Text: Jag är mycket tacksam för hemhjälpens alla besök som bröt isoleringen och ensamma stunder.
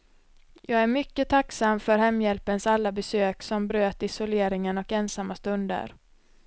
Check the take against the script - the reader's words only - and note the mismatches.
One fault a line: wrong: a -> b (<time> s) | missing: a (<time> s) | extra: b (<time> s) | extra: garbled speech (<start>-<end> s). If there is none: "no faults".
no faults